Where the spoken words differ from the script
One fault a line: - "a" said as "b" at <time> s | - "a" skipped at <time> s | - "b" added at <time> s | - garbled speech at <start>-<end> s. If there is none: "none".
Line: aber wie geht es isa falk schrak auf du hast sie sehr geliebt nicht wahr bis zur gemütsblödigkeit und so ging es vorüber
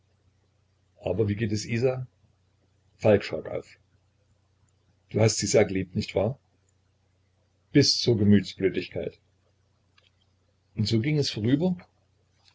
none